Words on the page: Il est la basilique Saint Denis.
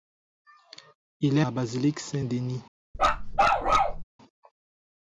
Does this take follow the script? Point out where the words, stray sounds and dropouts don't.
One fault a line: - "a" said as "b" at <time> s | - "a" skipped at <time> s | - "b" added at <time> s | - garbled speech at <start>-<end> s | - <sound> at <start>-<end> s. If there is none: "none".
- bark at 2.9-4.0 s